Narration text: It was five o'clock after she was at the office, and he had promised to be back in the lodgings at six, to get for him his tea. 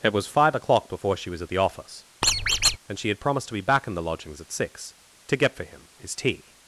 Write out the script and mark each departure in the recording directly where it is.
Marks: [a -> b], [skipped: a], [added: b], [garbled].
It was five o'clock [after -> before] she was at the office, and [he -> she] had promised to be back in the lodgings at six, to get for him his tea.